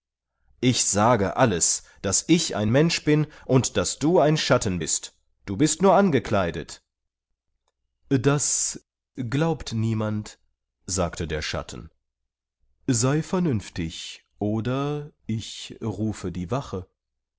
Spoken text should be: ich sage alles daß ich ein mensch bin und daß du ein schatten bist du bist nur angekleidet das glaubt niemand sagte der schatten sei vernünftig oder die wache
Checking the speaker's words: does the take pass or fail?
fail